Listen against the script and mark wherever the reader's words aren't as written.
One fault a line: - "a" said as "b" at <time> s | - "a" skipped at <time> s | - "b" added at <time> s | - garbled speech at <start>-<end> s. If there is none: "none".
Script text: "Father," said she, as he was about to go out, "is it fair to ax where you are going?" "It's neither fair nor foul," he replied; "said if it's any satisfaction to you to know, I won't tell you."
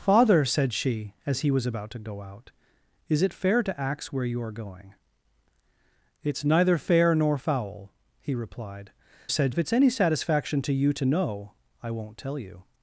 none